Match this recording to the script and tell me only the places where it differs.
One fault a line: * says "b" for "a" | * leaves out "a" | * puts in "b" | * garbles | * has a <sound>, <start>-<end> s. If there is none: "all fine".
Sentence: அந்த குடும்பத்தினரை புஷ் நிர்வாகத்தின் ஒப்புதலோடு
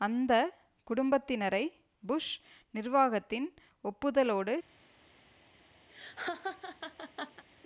* has a laugh, 5.9-7.4 s